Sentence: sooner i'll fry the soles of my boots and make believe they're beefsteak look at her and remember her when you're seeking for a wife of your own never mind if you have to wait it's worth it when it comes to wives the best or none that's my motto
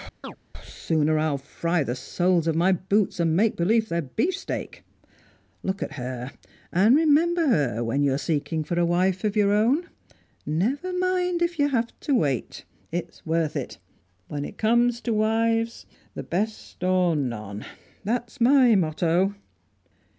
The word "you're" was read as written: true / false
true